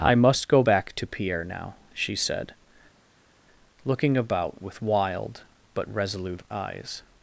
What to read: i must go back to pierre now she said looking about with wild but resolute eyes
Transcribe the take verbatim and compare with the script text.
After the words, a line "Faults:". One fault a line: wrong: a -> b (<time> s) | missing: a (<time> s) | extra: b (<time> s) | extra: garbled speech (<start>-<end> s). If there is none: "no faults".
i must go back to pierre now she said looking about with wild but resolute eyes
Faults:
no faults